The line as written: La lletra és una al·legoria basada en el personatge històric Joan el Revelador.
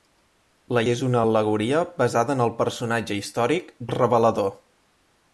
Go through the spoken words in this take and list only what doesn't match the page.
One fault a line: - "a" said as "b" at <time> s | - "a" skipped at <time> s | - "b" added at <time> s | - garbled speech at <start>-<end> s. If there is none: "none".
- "lletra" skipped at 0.8 s
- "Joan" skipped at 3.7 s